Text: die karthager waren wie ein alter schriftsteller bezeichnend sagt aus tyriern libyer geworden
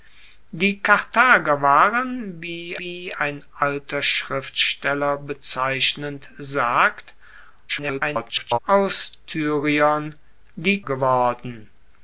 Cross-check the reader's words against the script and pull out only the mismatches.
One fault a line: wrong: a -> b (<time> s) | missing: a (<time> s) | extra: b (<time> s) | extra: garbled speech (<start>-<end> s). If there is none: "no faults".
extra: wie (2.8 s)
extra: garbled speech (7.7-8.6 s)
wrong: libyer -> die (10.6 s)